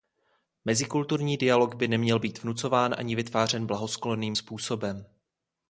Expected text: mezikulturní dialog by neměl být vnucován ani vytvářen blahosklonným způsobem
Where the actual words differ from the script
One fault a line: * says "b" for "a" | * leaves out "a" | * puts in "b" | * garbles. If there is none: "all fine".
all fine